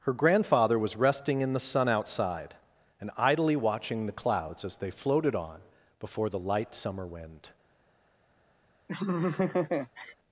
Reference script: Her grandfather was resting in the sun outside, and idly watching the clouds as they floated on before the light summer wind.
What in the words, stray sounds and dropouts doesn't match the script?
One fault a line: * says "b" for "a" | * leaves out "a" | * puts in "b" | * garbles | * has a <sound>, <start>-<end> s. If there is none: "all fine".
* has a laugh, 8.9-10.1 s